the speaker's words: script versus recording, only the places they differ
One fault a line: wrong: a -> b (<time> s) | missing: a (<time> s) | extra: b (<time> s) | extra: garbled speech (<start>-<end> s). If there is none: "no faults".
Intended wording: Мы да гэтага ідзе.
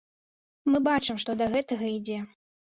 extra: бачым што (0.9 s)